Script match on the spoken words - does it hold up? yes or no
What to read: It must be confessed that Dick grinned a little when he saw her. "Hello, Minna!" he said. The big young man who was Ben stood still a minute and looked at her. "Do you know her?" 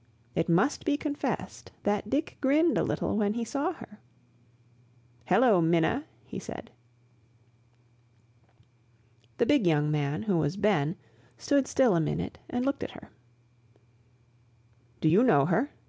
yes